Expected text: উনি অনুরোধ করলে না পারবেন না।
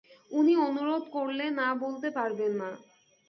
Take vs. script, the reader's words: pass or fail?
fail